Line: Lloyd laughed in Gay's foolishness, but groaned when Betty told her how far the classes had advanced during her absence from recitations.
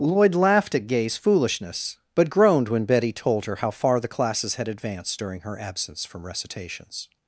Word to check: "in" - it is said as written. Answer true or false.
false